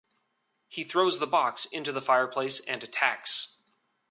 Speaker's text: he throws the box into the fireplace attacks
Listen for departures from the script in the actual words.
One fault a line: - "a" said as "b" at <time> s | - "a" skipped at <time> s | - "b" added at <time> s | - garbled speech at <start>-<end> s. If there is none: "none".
- "and" added at 2.6 s